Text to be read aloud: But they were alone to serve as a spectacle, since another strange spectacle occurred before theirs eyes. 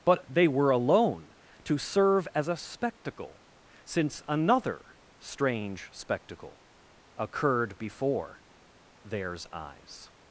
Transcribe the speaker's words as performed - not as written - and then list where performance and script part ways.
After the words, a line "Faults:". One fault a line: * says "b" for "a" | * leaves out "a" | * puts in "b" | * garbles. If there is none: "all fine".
But they were alone to serve as a spectacle, since another strange spectacle occurred before theirs eyes.
Faults:
all fine